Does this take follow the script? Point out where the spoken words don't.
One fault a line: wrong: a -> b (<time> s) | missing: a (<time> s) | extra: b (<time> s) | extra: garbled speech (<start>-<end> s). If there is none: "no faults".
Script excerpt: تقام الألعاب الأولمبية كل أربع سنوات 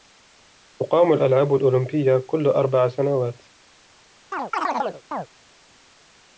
no faults